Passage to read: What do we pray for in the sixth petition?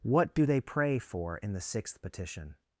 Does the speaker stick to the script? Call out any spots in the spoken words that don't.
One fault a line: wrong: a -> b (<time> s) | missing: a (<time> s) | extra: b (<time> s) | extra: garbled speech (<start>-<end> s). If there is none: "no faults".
wrong: we -> they (0.5 s)